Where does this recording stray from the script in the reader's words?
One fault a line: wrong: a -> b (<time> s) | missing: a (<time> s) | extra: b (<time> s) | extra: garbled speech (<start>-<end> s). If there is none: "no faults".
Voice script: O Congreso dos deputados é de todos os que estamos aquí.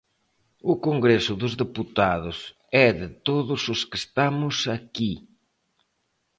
no faults